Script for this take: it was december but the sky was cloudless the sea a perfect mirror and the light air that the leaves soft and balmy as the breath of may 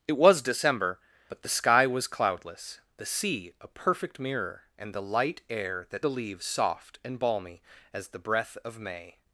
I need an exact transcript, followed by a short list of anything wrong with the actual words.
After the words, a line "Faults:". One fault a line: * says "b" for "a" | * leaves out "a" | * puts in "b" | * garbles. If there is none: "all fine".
it was december but the sky was cloudless the sea a perfect mirror and the light air that the leaves soft and balmy as the breath of may
Faults:
all fine